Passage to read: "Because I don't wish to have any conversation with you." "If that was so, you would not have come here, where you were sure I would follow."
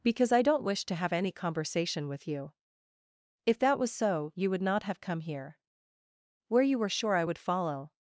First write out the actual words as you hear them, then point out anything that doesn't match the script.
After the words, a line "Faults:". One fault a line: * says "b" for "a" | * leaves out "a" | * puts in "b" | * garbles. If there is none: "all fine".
"Because I don't wish to have any conversation with you." "If that was so, you would not have come here, where you were sure I would follow."
Faults:
all fine